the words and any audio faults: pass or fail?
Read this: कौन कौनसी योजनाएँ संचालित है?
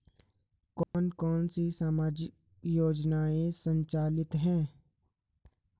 fail